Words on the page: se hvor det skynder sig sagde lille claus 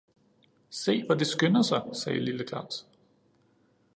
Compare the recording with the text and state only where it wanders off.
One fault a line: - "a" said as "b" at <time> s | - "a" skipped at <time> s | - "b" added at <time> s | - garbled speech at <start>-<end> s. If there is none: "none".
none